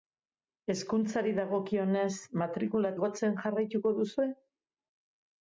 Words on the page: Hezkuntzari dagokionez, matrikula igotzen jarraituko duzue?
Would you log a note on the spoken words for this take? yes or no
no